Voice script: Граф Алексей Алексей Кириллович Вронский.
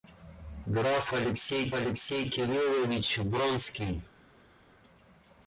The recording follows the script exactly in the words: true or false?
true